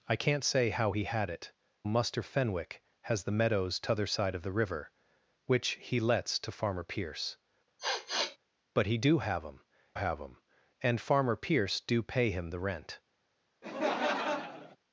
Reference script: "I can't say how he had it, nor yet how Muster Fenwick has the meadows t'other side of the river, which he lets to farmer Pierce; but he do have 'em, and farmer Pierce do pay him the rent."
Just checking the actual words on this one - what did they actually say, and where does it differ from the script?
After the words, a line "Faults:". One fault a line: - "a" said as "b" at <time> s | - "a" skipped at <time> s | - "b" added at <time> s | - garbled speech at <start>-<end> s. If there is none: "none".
"I can't say how he had it, Muster Fenwick has the meadows t'other side of the river, which he lets to farmer Pierce; but he do have 'em have em, and farmer Pierce do pay him the rent."
Faults:
- "nor yet how" skipped at 1.5 s
- "have em" added at 9.9 s